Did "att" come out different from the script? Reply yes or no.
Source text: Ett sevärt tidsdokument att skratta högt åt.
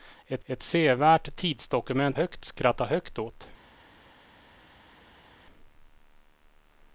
yes